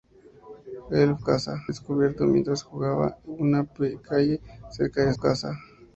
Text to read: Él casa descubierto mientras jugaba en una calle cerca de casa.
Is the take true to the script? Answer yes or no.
yes